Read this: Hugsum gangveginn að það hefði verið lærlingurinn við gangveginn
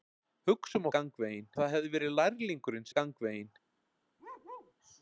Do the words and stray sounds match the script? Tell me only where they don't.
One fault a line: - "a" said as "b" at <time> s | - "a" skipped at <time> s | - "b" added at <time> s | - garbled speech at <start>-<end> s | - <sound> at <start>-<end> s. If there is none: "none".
- bark at 4.2-4.7 s